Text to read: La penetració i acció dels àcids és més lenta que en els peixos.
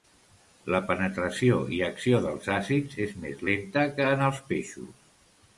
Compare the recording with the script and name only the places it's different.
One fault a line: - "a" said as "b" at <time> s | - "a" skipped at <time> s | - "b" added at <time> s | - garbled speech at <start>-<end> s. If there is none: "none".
none